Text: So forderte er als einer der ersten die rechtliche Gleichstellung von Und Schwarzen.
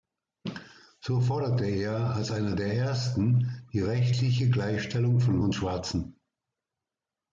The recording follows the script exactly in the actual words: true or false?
true